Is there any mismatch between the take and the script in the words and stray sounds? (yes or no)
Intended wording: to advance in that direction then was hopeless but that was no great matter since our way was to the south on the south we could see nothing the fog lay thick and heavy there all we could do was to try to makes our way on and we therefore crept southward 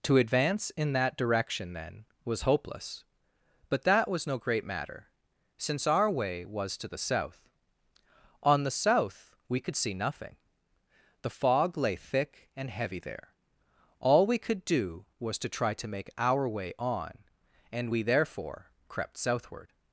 yes